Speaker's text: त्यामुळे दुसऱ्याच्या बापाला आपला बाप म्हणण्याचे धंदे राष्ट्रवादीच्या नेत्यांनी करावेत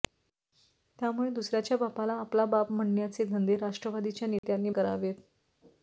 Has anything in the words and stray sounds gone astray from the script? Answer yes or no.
yes